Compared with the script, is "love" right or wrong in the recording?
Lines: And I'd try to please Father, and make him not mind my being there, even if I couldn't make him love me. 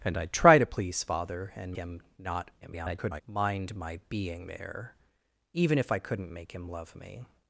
right